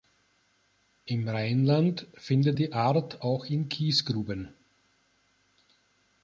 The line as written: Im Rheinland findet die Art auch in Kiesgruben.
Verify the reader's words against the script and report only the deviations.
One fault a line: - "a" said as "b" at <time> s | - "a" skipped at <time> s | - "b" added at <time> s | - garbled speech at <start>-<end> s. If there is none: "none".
none